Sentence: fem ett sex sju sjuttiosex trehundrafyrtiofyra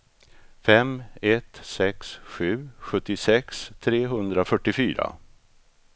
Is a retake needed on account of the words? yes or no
no